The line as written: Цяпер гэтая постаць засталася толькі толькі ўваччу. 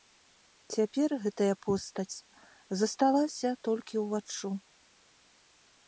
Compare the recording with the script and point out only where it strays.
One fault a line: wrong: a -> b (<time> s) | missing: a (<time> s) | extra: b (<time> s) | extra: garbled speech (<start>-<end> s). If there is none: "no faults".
missing: толькі (4.0 s)